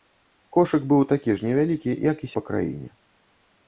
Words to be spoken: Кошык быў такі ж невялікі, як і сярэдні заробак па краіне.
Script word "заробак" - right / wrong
wrong